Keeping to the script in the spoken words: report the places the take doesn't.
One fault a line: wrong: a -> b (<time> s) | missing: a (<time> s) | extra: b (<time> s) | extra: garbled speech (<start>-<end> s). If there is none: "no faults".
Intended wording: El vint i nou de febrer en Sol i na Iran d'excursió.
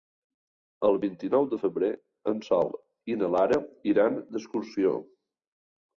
extra: Lara (3.4 s)